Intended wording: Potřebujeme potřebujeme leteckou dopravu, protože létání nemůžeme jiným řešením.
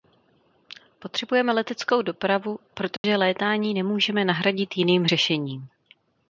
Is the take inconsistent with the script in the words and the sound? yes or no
yes